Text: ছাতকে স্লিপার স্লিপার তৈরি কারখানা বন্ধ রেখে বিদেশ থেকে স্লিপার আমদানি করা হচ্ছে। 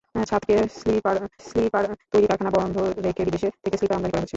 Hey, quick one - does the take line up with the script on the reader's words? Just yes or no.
yes